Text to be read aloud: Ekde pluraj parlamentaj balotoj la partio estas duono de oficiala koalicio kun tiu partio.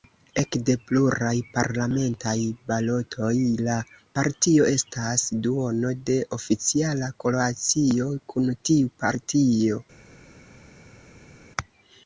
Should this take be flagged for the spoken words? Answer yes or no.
no